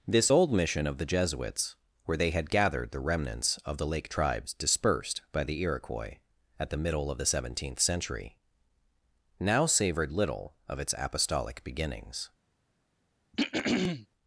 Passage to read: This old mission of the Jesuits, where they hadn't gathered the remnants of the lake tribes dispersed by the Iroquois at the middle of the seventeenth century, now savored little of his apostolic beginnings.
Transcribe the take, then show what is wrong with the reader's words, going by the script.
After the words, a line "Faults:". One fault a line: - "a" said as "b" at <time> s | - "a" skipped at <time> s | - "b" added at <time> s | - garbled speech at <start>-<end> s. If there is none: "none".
This old mission of the Jesuits, where they had gathered the remnants of the lake tribes dispersed by the Iroquois at the middle of the seventeenth century, now savored little of its apostolic beginnings.
Faults:
- "hadn't" said as "had" at 2.3 s
- "his" said as "its" at 10.8 s